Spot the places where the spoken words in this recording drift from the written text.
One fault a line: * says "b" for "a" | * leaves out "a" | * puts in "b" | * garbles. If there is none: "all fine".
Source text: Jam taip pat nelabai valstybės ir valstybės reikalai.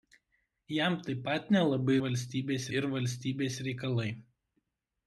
all fine